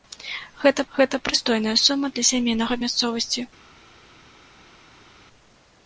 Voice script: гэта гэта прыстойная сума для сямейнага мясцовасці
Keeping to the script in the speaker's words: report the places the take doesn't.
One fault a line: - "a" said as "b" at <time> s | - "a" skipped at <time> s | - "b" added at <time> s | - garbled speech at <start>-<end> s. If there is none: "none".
none